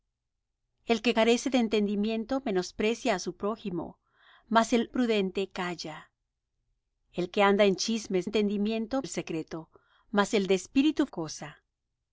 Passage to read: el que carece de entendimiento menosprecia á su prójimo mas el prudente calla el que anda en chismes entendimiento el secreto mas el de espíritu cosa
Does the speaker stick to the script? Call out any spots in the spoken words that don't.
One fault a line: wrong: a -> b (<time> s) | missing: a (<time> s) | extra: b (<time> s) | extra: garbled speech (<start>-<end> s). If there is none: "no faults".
no faults